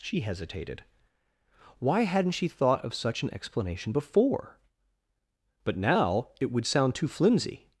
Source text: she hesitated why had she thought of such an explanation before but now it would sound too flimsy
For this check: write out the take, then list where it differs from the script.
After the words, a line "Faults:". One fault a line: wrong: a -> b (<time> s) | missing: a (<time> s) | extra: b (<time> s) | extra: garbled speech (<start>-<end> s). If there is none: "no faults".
she hesitated why hadn't she thought of such an explanation before but now it would sound too flimsy
Faults:
wrong: had -> hadn't (2.0 s)